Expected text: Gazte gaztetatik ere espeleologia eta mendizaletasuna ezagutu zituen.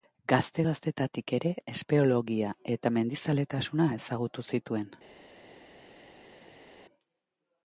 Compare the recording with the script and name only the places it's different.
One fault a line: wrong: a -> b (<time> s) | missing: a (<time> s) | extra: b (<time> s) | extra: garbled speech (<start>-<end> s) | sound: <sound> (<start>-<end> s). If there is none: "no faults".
no faults